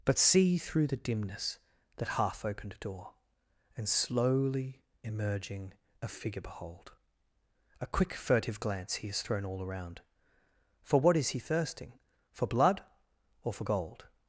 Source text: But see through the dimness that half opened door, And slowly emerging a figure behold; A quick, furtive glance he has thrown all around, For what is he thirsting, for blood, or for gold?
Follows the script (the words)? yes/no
yes